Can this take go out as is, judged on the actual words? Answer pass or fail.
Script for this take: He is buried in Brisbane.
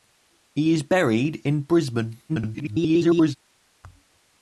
fail